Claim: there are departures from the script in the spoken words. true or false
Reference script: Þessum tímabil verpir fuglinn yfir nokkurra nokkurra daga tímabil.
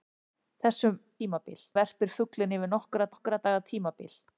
false